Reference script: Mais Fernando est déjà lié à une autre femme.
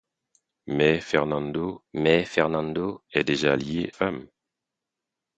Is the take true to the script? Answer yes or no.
no